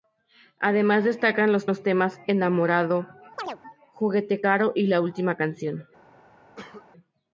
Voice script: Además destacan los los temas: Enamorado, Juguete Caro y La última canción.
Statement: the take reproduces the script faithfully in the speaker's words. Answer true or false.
true